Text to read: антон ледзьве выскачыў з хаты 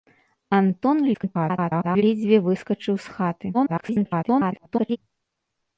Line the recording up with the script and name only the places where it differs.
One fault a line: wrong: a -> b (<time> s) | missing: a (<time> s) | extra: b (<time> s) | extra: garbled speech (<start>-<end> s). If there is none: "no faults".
extra: garbled speech (1.1-2.0 s)
extra: garbled speech (3.5-5.0 s)